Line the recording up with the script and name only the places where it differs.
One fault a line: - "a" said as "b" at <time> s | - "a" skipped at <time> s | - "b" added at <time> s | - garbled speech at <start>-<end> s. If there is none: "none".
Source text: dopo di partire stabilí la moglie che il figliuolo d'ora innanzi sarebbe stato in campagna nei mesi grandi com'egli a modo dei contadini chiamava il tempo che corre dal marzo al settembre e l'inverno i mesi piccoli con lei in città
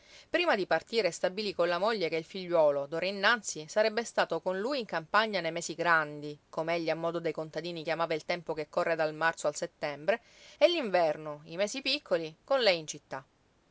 - "dopo" said as "prima" at 0.3 s
- "con" added at 1.5 s
- "con lui" added at 4.4 s